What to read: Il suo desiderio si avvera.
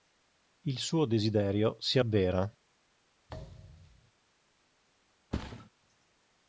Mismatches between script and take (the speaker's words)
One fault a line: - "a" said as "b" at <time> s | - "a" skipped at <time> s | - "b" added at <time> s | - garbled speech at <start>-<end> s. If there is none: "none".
none